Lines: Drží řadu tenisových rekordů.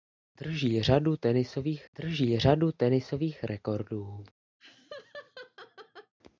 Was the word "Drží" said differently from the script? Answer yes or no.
no